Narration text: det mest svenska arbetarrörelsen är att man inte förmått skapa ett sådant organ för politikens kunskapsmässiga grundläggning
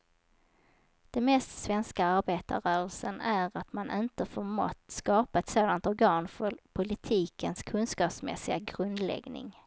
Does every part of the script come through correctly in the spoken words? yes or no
yes